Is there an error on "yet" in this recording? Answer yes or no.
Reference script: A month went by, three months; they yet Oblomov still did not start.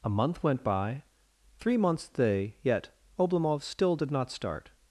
no